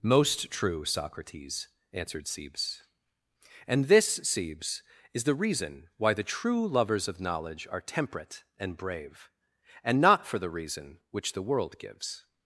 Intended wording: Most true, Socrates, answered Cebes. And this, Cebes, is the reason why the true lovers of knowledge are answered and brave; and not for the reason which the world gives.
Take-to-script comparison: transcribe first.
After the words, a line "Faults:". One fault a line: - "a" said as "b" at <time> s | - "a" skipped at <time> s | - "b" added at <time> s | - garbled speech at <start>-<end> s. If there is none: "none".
Most true, Socrates, answered Cebes. And this, Cebes, is the reason why the true lovers of knowledge are temperate and brave; and not for the reason which the world gives.
Faults:
- "answered" said as "temperate" at 7.8 s